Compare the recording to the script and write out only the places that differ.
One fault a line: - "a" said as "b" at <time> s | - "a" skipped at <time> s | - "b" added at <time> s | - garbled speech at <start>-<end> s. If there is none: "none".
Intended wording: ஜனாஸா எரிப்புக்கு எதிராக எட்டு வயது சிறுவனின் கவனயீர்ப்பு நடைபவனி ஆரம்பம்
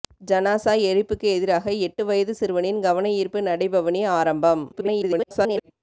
- garbled speech at 4.7-5.7 s